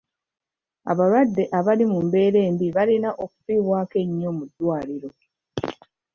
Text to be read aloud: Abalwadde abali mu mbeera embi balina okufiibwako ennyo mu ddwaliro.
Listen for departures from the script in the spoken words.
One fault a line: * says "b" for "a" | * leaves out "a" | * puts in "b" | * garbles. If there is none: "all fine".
all fine